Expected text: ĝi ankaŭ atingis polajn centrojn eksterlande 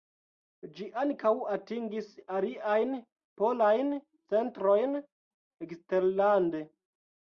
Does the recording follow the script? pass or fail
fail